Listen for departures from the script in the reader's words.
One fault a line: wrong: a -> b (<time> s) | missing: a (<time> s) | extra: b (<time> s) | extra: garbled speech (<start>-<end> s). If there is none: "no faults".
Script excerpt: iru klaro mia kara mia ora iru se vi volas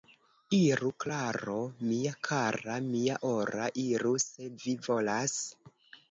no faults